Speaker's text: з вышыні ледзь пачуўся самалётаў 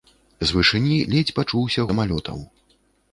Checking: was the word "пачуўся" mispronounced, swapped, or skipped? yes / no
no